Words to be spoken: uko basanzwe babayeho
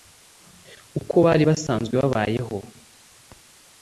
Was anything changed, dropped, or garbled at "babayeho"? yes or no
no